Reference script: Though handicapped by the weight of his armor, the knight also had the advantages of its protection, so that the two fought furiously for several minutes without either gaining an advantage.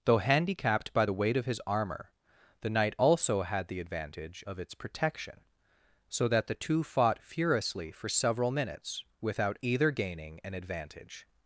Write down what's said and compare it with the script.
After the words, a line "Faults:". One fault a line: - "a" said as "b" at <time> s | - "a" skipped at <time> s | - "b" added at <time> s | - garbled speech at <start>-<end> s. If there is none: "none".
Though handicapped by the weight of his armor, the knight also had the advantage of its protection, so that the two fought furiously for several minutes without either gaining an advantage.
Faults:
- "advantages" said as "advantage" at 3.8 s